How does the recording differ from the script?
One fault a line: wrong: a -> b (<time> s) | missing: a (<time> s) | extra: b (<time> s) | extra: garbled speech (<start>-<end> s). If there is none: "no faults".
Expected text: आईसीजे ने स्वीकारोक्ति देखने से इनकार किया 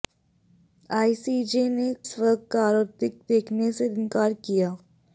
no faults